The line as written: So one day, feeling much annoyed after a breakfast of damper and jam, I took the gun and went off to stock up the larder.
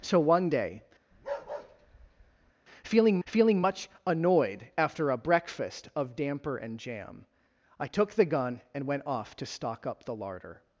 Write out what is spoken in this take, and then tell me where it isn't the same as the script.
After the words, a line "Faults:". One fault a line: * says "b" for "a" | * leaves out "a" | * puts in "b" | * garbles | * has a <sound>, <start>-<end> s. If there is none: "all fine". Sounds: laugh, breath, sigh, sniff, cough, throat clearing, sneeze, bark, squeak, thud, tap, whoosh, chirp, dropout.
So one day, feeling feeling much annoyed after a breakfast of damper and jam, I took the gun and went off to stock up the larder.
Faults:
* has a bark, 1.1-2.5 s
* puts in "feeling"